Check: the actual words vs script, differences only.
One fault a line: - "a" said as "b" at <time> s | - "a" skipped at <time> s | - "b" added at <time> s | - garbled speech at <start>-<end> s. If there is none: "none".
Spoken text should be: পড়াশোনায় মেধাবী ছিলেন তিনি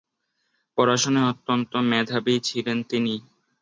- "অত্যন্ত" added at 1.3 s